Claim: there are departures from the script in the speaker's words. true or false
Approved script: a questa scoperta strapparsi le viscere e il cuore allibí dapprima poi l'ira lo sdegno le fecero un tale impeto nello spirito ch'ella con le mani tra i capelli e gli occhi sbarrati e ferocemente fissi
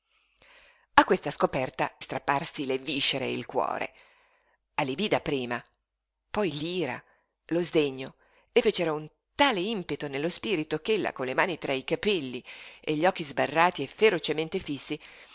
false